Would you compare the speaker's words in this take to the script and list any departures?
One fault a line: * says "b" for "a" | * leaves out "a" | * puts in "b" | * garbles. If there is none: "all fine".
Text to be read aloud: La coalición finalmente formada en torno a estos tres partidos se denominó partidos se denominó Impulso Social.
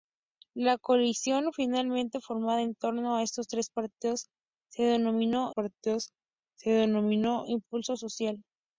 all fine